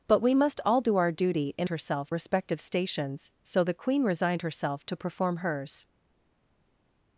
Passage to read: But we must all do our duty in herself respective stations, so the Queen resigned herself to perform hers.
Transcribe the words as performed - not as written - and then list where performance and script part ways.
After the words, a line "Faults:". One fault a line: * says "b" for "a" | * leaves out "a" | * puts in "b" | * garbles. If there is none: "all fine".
But we must all do our duty in herself respective stations, so the Queen resigned herself to perform hers.
Faults:
all fine